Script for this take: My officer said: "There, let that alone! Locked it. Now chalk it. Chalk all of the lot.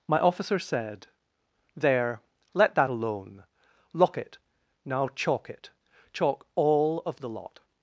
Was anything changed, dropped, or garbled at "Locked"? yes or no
yes